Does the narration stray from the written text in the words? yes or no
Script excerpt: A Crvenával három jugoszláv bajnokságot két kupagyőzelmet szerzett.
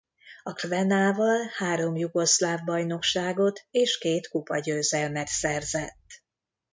yes